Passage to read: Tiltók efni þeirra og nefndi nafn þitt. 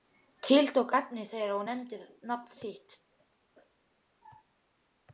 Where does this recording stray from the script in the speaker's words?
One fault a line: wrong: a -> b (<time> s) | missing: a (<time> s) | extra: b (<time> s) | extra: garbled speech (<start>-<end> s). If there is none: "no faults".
no faults